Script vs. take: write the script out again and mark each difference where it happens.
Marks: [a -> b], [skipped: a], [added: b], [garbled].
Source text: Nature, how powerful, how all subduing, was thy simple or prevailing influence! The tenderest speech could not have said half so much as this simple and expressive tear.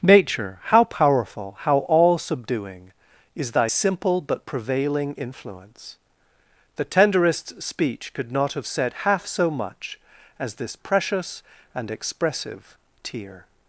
Nature, how powerful, how all subduing, [was -> is] thy simple [or -> but] prevailing influence! The tenderest speech could not have said half so much as this [simple -> precious] and expressive tear.